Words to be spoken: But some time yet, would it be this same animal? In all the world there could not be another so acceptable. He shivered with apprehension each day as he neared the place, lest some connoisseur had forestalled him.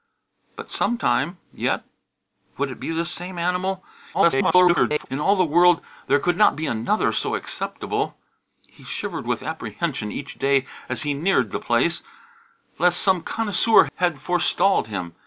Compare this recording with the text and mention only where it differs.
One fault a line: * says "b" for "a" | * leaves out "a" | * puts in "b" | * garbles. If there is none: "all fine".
* garbles